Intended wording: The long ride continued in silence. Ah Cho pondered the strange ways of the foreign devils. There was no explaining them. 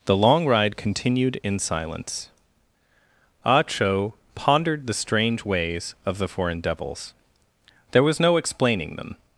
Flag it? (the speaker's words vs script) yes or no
no